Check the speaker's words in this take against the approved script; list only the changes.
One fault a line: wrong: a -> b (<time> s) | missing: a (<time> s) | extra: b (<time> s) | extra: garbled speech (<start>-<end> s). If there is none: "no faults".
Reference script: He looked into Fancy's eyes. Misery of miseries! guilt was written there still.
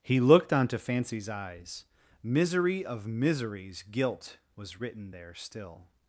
wrong: into -> onto (0.5 s)